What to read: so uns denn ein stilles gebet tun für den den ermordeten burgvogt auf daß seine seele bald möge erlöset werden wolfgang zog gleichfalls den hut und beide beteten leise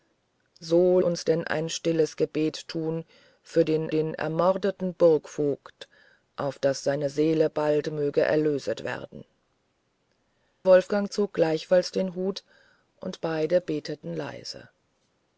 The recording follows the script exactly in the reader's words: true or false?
true